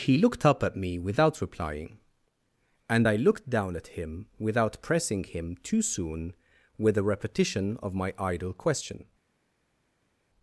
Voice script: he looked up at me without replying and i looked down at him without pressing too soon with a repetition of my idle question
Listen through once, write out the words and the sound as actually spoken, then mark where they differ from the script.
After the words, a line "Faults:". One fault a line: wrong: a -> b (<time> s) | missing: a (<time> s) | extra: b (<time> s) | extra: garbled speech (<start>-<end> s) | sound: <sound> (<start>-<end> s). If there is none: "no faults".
he looked up at me without replying and i looked down at him without pressing him too soon with a repetition of my idle question
Faults:
extra: him (5.2 s)